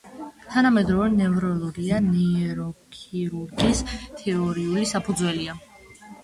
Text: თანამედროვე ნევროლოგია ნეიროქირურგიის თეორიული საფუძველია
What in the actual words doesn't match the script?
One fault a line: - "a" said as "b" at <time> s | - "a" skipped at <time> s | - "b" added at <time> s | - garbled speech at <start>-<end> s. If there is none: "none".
none